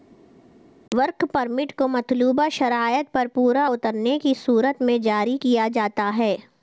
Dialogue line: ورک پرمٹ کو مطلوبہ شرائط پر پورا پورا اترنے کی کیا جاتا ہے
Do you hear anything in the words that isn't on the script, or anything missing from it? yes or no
yes